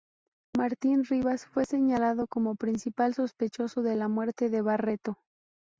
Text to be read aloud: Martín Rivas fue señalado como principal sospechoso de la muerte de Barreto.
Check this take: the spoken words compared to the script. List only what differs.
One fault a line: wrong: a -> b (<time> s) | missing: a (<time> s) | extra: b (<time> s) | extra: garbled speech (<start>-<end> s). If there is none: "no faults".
no faults